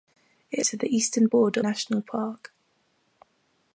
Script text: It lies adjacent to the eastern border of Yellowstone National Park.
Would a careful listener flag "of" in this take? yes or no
yes